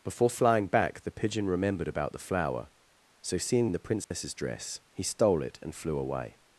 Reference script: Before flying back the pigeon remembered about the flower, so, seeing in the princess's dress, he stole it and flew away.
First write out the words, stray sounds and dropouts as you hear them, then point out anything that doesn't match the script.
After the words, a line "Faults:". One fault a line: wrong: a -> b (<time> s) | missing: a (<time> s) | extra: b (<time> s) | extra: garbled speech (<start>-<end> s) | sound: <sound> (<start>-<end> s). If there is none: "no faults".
Before flying back the pigeon remembered about the flower, so, seeing in the princess's dress, he stole it and flew away.
Faults:
sound: dropout (4.0-4.1 s)